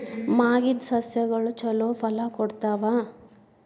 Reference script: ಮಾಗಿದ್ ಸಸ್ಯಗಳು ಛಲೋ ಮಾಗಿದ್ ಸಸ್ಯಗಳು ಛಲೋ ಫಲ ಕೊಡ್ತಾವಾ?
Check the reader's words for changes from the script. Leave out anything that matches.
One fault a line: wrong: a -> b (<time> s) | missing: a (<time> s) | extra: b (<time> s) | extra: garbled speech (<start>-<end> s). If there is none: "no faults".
missing: ಮಾಗಿದ್ ಸಸ್ಯಗಳು ಛಲೋ (1.9 s)